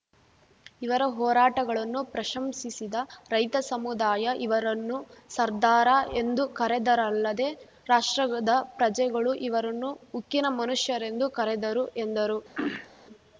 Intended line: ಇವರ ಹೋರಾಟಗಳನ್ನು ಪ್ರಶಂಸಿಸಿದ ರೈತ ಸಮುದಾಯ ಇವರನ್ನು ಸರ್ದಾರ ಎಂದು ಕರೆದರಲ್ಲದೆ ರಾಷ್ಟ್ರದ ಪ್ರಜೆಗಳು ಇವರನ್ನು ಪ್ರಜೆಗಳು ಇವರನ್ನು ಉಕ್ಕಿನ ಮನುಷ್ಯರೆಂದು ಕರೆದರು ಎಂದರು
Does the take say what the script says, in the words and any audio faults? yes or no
no